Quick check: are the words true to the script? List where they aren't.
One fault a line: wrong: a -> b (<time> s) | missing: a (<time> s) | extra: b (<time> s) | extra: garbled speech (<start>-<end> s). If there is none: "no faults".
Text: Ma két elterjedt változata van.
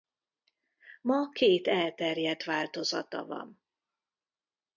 no faults